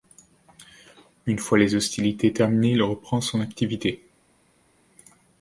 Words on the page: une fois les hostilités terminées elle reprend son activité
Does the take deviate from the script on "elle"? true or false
true